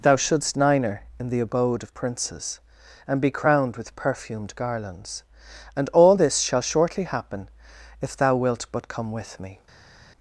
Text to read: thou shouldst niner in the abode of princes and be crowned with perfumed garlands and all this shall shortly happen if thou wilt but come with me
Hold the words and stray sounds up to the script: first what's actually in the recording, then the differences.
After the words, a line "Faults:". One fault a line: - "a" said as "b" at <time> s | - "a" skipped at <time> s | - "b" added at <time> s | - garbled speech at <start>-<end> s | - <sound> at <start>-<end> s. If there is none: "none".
thou shouldst niner in the abode of princes and be crowned with perfumed garlands and all this shall shortly happen if thou wilt but come with me
Faults:
none